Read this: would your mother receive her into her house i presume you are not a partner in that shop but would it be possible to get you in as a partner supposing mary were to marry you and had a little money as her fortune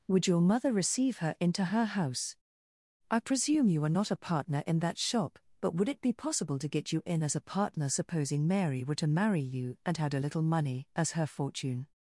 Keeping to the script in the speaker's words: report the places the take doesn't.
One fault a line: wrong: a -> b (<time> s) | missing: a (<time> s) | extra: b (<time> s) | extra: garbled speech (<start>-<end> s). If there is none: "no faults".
no faults